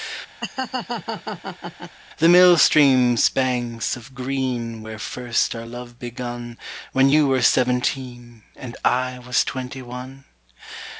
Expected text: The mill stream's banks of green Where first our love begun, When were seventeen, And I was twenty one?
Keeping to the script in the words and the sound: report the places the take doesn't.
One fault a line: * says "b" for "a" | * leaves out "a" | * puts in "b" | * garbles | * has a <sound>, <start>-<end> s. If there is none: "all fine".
* has a laugh, 0.4-2.0 s
* puts in "you"